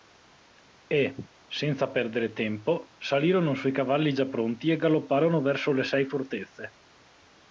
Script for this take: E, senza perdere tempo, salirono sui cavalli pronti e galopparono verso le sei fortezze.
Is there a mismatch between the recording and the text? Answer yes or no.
yes